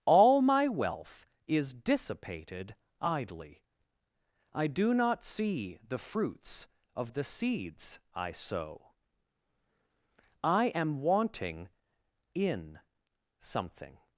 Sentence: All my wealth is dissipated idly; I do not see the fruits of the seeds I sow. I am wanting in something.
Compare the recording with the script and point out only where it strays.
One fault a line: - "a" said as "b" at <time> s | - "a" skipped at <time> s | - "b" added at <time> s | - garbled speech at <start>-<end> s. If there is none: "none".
none